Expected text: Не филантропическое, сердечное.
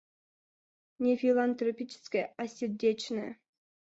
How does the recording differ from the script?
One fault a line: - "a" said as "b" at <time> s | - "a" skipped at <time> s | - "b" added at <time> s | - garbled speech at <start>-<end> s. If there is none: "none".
- "а" added at 2.4 s